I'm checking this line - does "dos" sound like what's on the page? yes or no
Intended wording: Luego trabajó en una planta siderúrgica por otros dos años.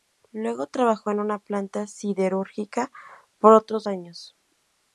no